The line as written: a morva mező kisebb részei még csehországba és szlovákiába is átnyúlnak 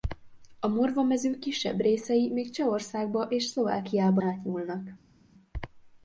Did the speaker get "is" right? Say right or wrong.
wrong